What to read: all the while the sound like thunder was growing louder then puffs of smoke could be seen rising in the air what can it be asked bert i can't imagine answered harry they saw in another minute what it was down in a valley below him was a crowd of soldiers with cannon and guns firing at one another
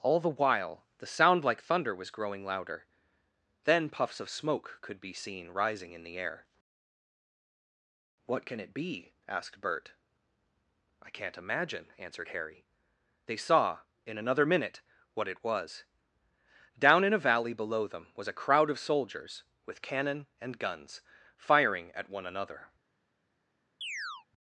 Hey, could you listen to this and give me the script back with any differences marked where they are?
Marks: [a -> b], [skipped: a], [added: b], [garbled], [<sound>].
all the while the sound like thunder was growing louder then puffs of smoke could be seen rising in the air what can it be asked bert i can't imagine answered harry they saw in another minute what it was down in a valley below [him -> them] was a crowd of soldiers with cannon and guns firing at one another [chirp]